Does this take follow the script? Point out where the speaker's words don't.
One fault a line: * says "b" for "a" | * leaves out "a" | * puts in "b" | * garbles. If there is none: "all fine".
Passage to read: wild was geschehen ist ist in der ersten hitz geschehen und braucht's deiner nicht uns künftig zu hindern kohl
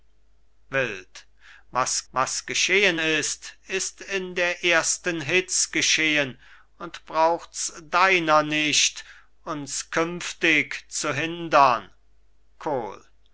* puts in "was"